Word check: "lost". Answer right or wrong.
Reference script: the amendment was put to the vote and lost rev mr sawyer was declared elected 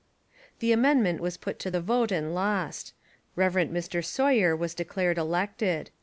right